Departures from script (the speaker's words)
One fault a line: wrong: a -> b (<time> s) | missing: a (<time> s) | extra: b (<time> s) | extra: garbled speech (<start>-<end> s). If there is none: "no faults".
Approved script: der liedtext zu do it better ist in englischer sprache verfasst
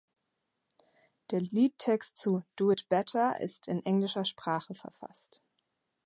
no faults